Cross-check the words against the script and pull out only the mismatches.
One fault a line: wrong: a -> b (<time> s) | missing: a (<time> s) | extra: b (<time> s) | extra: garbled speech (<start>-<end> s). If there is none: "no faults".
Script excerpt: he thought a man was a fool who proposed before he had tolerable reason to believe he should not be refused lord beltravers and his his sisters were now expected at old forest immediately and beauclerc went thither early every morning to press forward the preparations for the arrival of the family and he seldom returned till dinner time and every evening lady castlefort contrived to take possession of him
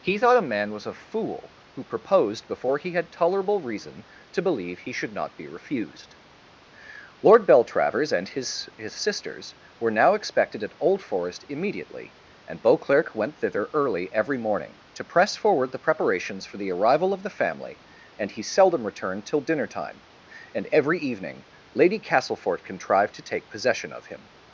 no faults